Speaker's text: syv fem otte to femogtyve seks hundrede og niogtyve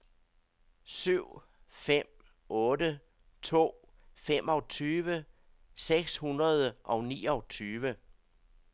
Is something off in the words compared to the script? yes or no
no